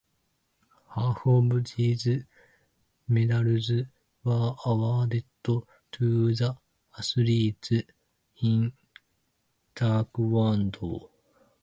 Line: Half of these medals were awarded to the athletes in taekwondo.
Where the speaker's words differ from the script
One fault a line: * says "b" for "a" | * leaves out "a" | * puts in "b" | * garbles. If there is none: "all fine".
all fine